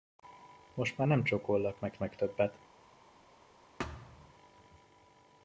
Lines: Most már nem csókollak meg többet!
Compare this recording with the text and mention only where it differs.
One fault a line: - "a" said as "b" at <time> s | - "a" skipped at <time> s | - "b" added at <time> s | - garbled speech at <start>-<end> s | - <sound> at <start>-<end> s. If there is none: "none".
- "meg" added at 2.0 s
- thud at 3.8-4.3 s